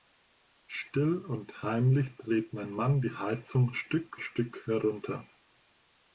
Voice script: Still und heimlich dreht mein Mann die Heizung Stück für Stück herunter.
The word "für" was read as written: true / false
false